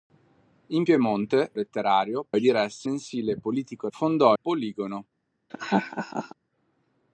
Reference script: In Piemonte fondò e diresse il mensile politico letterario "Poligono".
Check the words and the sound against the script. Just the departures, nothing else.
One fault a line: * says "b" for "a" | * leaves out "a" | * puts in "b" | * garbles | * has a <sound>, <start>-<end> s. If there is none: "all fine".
* says "letterario" for "fondò"
* leaves out "il"
* says "fondò" for "letterario"
* has a laugh, 5.5-6.3 s